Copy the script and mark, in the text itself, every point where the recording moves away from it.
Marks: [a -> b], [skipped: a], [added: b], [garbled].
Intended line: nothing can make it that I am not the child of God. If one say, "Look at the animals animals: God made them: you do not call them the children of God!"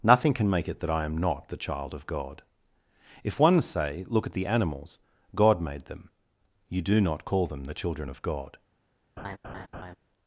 nothing can make it that I am not the child of God. If one say, "Look at the animals [skipped: animals:] God made them: you do not call them the children of God!"